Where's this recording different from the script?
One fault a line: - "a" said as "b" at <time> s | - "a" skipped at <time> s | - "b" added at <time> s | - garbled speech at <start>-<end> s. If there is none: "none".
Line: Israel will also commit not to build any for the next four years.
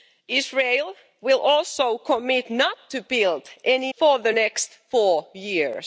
none